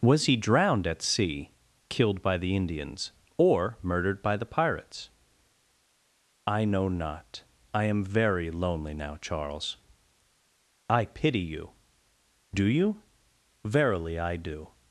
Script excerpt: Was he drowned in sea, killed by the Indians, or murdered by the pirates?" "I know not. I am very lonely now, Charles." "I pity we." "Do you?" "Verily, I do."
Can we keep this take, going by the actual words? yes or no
no